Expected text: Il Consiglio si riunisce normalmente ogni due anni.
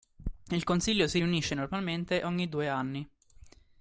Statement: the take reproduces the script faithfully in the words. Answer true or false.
true